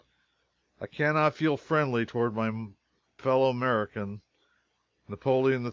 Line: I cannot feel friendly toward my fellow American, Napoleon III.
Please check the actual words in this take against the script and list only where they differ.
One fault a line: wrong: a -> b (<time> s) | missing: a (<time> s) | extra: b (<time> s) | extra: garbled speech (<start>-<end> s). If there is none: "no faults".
no faults